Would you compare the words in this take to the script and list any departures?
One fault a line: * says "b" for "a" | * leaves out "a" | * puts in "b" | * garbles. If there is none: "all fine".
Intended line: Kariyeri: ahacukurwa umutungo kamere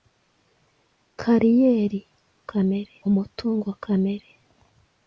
* says "kamere" for "ahacukurwa"